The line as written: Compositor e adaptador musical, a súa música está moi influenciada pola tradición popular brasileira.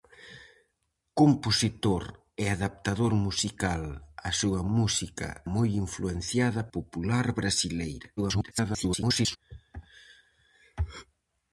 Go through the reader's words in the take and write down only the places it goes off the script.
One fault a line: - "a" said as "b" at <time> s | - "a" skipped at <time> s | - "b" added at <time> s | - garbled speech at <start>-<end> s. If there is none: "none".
- "está" skipped at 5.3 s
- "pola tradición" skipped at 6.6 s
- garbled speech at 8.2-9.4 s